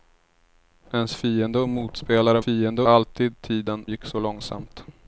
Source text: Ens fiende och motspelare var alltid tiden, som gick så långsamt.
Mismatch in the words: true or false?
true